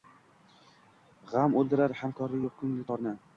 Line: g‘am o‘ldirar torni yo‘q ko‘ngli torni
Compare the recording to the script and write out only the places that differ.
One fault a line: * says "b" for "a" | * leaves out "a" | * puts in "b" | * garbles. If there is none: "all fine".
* says "hamkori" for "torni"